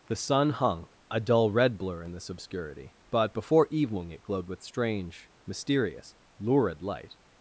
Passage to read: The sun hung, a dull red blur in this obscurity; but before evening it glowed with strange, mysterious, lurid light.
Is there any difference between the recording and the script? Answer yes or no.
no